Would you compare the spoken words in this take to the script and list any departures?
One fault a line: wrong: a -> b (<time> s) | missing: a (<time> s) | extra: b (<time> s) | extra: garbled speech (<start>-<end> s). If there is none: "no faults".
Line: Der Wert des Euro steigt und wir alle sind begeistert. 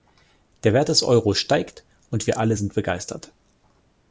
no faults